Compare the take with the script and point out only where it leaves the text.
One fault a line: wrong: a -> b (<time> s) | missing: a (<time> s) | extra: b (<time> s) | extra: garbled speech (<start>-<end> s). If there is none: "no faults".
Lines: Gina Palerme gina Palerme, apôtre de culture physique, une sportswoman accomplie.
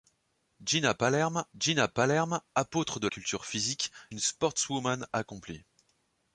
no faults